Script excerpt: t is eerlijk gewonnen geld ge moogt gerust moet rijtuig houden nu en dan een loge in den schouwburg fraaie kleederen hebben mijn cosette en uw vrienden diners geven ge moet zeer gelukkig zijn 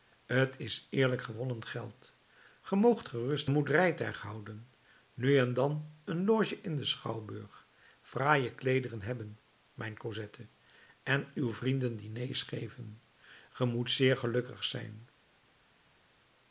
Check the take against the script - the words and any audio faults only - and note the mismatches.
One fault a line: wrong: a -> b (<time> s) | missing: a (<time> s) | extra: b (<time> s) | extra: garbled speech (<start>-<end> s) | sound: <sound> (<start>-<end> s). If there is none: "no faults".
no faults